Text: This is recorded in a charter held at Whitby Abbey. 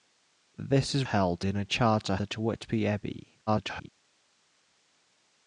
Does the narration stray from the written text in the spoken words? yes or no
yes